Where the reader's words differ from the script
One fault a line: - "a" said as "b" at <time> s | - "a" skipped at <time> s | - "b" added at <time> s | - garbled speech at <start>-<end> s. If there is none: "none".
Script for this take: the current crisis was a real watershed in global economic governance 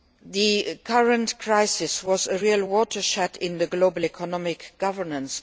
none